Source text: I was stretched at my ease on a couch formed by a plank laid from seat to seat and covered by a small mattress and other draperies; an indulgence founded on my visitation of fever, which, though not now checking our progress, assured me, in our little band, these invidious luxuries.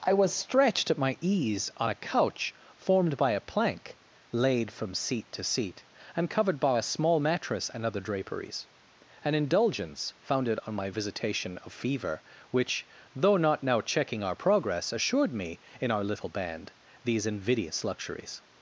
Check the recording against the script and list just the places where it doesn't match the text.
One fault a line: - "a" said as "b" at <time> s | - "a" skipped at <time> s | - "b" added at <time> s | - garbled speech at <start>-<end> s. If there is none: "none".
none